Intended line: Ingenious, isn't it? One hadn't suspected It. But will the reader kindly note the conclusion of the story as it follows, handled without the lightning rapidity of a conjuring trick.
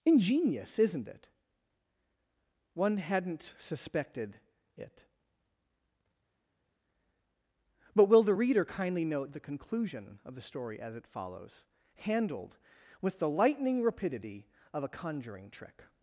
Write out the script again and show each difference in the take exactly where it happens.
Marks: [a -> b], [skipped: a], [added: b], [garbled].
Ingenious, isn't it? One hadn't suspected It. But will the reader kindly note the conclusion of the story as it follows, handled [without -> with] the lightning rapidity of a conjuring trick.